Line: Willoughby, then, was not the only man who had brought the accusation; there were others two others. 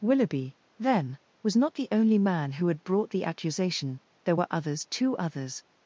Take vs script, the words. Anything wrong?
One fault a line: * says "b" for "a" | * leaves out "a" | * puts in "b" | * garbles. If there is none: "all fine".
all fine